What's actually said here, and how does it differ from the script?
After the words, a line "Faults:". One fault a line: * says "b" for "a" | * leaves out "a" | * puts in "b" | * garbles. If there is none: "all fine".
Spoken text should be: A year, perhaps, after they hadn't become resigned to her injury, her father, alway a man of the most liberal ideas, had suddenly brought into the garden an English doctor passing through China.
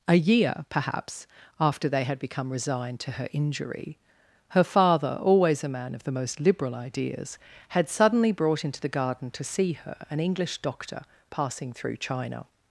A year, perhaps, after they had become resigned to her injury, her father, always a man of the most liberal ideas, had suddenly brought into the garden to see her an English doctor passing through China.
Faults:
* says "had" for "hadn't"
* says "always" for "alway"
* puts in "to see her"